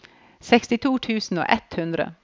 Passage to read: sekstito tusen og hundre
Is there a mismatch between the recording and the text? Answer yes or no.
yes